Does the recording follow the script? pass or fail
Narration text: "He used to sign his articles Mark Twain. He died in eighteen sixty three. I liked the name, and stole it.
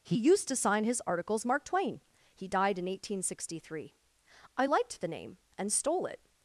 pass